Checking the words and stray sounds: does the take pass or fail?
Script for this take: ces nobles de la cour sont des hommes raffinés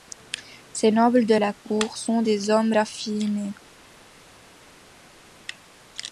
pass